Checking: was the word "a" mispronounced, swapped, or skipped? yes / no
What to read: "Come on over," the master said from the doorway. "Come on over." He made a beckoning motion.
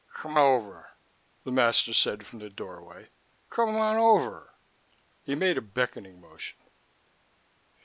no